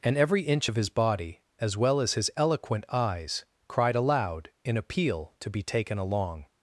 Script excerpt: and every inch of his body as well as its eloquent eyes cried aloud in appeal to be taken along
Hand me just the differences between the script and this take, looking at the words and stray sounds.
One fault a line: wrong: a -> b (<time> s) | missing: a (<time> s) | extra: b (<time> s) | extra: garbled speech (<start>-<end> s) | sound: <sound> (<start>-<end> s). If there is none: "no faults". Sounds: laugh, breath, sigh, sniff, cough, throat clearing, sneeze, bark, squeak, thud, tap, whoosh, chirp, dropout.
wrong: its -> his (2.1 s)